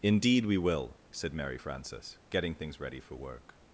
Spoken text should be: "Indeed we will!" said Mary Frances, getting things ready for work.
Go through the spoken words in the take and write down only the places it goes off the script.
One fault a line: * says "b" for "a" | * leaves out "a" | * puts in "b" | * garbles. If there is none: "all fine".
all fine